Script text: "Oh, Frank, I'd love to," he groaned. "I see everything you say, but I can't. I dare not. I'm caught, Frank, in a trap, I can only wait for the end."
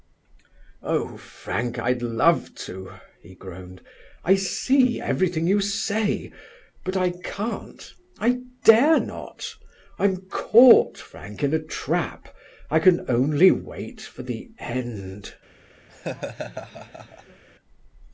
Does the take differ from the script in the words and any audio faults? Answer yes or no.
yes